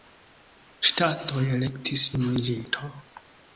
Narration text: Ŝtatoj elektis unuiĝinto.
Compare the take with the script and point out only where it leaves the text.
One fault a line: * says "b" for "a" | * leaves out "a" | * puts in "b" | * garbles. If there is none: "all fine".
all fine